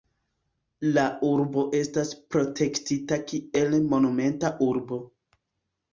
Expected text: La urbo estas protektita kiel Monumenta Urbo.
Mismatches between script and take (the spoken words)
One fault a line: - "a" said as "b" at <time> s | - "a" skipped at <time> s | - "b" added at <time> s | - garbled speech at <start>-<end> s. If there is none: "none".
none